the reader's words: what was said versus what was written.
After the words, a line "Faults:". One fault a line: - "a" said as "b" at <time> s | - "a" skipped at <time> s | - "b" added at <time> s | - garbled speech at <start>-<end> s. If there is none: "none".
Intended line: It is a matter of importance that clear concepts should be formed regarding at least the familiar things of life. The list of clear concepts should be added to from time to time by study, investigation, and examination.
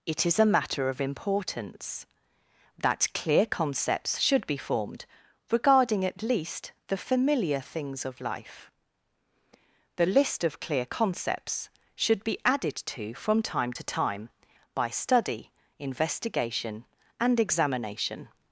It is a matter of importance that clear concepts should be formed regarding at least the familiar things of life. The list of clear concepts should be added to from time to time by study, investigation, and examination.
Faults:
none